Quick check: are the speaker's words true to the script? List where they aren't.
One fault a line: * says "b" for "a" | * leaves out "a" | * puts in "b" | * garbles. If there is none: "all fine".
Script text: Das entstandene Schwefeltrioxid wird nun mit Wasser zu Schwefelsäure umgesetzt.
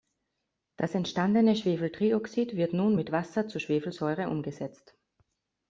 all fine